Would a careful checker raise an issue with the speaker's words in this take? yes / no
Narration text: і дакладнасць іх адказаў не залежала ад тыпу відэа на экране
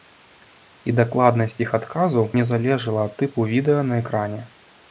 no